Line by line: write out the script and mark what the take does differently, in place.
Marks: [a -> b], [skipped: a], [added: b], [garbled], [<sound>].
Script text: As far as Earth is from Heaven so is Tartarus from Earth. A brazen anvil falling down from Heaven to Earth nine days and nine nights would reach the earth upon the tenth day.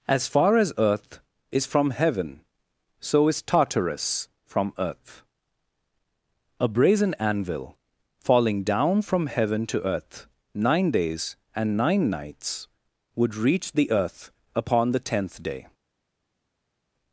As far as Earth is from Heaven so is Tartarus from Earth. A brazen anvil falling down from Heaven to Earth nine days and nine nights would reach the earth upon the tenth day.